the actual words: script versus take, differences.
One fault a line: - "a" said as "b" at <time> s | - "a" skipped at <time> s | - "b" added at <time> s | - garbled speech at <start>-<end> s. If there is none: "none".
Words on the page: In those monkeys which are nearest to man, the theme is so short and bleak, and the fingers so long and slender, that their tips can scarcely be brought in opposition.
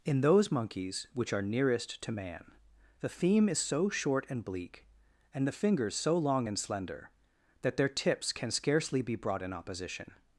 none